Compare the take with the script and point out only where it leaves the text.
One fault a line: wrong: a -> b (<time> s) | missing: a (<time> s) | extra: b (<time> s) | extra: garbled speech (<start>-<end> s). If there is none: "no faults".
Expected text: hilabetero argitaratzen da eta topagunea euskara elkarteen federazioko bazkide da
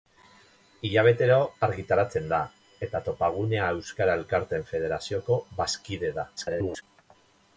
extra: garbled speech (6.4-6.8 s)